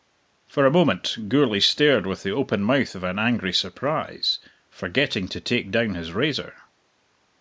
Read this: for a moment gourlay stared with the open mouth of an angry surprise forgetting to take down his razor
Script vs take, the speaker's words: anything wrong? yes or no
no